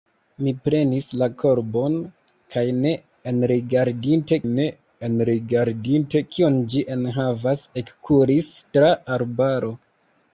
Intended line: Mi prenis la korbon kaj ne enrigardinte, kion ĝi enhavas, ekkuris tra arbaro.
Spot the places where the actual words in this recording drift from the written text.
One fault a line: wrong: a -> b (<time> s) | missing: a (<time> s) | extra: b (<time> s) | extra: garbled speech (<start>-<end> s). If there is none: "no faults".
extra: ne enrigardinte (4.5 s)